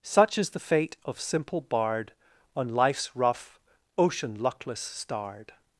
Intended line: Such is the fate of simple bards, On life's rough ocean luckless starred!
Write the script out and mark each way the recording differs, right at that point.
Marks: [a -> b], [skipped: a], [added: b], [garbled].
Such is the fate of simple [bards, -> bard] On life's rough ocean luckless starred!